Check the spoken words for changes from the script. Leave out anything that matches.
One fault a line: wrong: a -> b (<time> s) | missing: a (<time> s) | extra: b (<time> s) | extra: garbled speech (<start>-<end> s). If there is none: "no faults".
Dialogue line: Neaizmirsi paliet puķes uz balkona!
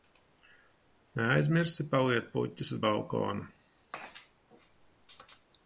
no faults